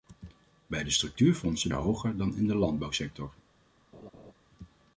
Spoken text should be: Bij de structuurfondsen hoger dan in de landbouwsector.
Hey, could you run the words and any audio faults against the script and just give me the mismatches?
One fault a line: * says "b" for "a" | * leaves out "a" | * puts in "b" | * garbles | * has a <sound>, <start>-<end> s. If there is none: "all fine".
* has a laugh, 3.9-4.3 s